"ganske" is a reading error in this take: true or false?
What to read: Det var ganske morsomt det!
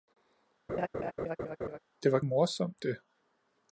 true